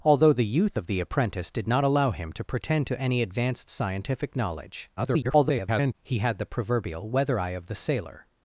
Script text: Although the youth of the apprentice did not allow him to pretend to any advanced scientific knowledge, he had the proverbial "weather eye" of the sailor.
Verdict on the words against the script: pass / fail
fail